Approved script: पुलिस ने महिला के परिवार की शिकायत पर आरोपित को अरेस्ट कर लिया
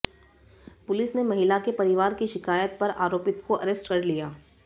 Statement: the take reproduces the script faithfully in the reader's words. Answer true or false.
true